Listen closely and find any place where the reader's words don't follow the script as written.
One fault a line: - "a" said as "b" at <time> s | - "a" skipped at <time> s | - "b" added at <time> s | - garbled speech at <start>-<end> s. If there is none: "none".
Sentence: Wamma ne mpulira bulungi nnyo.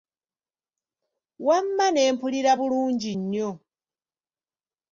none